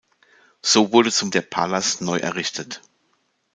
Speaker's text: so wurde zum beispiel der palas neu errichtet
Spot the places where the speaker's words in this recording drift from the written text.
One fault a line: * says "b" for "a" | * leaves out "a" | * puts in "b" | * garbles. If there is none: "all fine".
* leaves out "beispiel"